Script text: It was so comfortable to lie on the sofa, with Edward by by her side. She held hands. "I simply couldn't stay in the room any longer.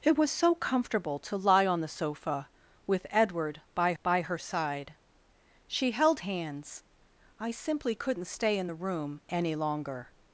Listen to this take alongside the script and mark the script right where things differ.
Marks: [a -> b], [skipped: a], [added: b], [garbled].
It was so comfortable to lie on the sofa, with Edward by by her side. She held hands. "I simply couldn't stay in the room any longer.